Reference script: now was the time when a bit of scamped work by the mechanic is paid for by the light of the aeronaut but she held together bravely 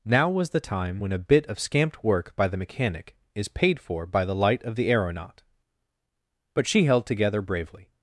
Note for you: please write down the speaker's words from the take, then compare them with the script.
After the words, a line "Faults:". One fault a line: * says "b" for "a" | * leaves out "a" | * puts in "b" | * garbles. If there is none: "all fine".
now was the time when a bit of scamped work by the mechanic is paid for by the light of the aeronaut but she held together bravely
Faults:
all fine